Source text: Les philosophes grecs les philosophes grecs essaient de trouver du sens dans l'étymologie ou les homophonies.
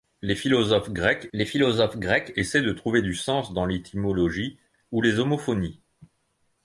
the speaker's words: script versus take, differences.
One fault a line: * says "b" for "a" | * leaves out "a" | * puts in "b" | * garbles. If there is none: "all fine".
all fine